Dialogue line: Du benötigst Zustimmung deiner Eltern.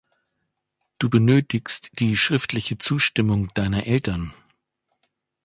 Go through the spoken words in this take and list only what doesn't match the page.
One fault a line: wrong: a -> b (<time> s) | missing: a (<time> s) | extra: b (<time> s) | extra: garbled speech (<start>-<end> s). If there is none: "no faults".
extra: die schriftliche (2.0 s)